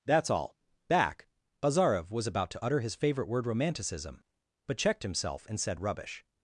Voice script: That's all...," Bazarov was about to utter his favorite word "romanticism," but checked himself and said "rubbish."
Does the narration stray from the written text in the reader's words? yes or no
yes